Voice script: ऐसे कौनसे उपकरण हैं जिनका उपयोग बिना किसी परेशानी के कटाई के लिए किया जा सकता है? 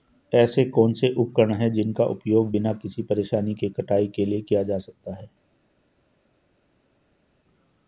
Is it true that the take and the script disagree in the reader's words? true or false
false